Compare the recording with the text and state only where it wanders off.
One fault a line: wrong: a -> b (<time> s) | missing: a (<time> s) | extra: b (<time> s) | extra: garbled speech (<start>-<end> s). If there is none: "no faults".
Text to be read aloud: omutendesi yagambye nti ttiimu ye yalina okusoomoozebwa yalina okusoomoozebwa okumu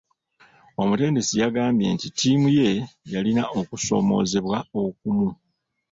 missing: yalina okusoomoozebwa (4.6 s)